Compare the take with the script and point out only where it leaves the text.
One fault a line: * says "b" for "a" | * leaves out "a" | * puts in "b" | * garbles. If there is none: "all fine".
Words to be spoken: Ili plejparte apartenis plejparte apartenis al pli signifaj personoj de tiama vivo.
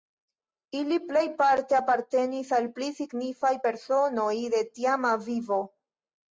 * leaves out "plejparte apartenis"